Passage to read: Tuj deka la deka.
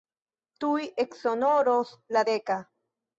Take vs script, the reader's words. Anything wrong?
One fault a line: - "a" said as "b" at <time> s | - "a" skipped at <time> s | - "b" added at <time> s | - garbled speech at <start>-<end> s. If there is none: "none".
- "deka" said as "eksonoros" at 1.0 s